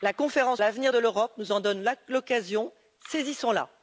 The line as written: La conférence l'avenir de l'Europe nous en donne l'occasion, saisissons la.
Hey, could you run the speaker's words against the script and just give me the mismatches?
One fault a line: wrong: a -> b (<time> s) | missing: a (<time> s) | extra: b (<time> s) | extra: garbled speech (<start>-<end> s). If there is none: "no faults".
no faults